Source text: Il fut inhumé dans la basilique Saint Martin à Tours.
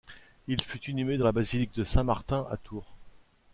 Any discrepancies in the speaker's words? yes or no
yes